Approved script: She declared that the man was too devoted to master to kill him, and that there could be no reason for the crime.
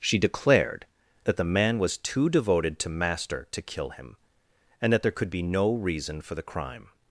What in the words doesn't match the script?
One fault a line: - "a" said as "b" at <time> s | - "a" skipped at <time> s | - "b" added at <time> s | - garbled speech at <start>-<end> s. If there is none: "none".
none